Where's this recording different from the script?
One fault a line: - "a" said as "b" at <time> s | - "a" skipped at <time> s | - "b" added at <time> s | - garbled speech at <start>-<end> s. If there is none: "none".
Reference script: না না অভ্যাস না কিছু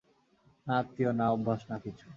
- "আত্মীয়" added at 0.8 s